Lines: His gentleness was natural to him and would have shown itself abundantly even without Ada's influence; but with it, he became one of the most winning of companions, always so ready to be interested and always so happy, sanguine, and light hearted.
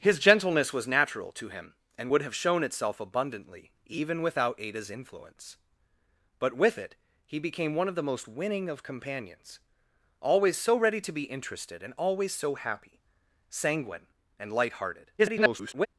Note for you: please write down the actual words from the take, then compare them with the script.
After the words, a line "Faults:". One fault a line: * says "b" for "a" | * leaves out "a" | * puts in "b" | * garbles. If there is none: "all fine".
His gentleness was natural to him and would have shown itself abundantly even without Ada's influence; but with it, he became one of the most winning of companions, always so ready to be interested and always so happy, sanguine, and light hearted. [garbled]
Faults:
* garbles